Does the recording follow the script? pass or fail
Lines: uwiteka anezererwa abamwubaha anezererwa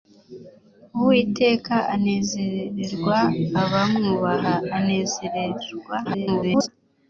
fail